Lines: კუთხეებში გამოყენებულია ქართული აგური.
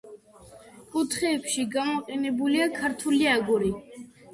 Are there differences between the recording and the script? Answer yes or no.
no